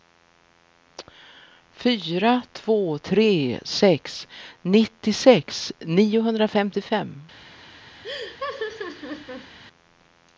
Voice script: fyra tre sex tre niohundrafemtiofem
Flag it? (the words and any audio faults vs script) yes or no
yes